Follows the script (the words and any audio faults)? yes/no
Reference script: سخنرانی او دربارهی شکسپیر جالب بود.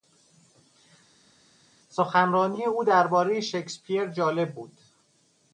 yes